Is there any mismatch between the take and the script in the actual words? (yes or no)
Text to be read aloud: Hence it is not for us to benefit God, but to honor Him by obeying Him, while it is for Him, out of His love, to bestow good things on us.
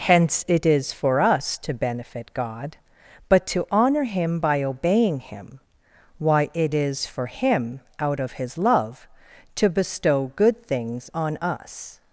yes